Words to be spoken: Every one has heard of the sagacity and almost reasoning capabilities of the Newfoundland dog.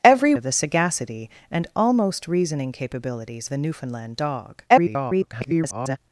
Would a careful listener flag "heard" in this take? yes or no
yes